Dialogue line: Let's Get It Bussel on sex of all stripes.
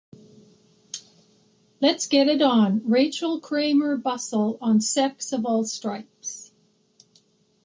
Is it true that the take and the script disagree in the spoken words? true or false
true